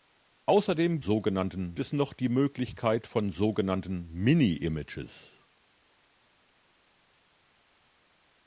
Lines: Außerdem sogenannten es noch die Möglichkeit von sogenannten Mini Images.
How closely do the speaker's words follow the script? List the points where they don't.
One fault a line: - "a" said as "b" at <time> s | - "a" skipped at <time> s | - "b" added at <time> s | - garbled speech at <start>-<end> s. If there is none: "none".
none